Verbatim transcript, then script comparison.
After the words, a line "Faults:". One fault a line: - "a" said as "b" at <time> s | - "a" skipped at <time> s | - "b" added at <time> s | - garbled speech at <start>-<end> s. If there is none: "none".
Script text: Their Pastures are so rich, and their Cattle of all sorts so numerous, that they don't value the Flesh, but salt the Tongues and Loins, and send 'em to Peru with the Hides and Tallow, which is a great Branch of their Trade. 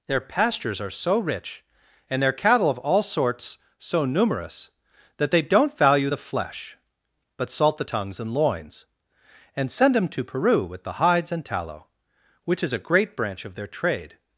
Their Pastures are so rich, and their Cattle of all sorts so numerous, that they don't value the Flesh, but salt the Tongues and Loins, and send 'them to Peru with the Hides and Tallow, which is a great Branch of their Trade.
Faults:
- "em" said as "them" at 10.0 s